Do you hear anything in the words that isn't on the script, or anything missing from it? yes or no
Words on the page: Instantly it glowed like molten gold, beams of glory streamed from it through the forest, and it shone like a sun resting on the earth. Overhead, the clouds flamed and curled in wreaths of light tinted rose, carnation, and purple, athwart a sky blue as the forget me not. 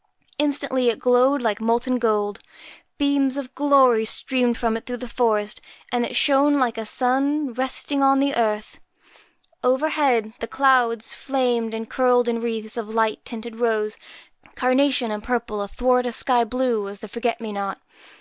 no